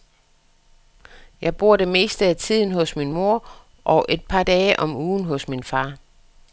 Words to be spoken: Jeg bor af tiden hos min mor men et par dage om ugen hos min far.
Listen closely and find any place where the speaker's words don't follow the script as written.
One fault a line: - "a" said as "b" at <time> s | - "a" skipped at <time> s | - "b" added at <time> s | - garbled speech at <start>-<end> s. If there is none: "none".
- "det meste" added at 1.8 s
- "men" said as "og" at 3.8 s